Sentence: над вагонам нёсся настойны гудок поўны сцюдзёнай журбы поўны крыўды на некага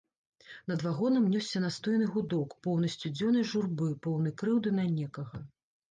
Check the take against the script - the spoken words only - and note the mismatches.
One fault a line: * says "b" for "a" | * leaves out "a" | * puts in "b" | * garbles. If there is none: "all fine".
all fine